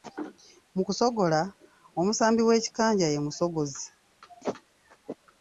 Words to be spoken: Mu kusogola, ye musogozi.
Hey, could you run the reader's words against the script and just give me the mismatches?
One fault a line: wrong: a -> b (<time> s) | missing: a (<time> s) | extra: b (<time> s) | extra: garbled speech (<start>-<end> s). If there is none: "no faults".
extra: omusambi w'ekikanja (2.0 s)